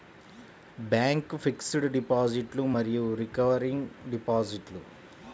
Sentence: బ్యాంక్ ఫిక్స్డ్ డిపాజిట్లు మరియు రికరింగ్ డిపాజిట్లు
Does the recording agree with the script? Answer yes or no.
yes